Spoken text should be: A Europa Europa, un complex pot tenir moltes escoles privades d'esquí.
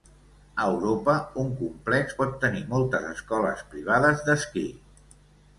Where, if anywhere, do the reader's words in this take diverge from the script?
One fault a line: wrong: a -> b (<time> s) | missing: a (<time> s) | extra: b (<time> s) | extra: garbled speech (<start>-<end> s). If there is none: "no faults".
missing: Europa (1.1 s)